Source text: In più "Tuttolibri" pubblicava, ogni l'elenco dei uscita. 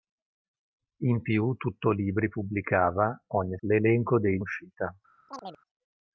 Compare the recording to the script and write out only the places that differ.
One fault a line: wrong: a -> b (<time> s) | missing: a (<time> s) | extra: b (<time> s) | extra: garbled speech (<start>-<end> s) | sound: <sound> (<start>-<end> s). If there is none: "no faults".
sound: chirp (5.3-5.6 s)